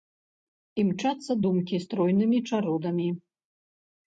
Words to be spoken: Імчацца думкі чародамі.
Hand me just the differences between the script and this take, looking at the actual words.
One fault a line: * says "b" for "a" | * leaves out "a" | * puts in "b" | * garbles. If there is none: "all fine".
* puts in "стройнымі"